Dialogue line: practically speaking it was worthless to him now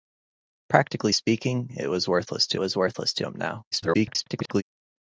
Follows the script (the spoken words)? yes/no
no